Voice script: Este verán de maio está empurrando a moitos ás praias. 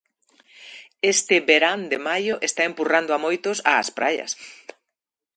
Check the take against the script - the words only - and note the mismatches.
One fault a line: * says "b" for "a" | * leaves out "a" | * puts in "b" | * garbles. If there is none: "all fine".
all fine